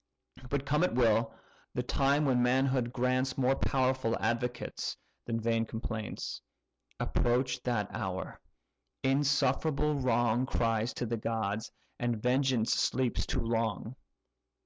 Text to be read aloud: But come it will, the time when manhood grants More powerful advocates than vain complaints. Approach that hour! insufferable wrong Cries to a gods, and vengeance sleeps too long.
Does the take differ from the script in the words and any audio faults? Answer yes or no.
yes